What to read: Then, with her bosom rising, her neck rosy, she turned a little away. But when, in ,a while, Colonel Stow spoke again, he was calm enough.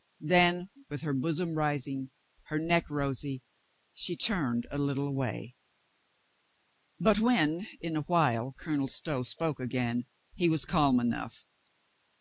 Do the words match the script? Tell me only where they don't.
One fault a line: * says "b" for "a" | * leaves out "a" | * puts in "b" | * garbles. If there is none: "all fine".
all fine